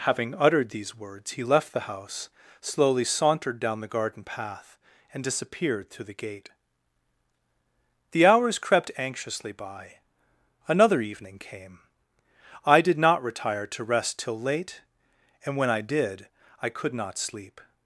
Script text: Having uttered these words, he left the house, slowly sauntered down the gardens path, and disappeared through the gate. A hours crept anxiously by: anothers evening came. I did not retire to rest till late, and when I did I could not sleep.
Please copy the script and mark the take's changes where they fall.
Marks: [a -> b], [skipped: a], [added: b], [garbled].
Having uttered these words, he left the house, slowly sauntered down the [gardens -> garden] path, and disappeared through the gate. [A -> The] hours crept anxiously by: [anothers -> another] evening came. I did not retire to rest till late, and when I did I could not sleep.